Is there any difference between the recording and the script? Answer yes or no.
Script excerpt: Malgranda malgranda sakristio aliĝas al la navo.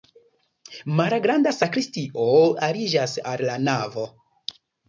yes